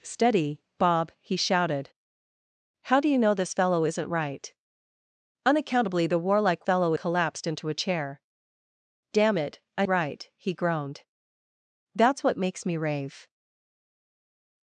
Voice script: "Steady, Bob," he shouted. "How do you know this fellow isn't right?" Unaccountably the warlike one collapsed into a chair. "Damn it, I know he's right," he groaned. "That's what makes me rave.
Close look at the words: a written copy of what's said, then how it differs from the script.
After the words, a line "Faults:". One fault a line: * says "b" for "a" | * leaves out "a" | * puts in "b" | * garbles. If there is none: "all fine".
"Steady, Bob," he shouted. "How do you know this fellow isn't right?" Unaccountably the warlike fellow collapsed into a chair. "Damn it, I right," he groaned. "That's what makes me rave.
Faults:
* says "fellow" for "one"
* leaves out "know he's"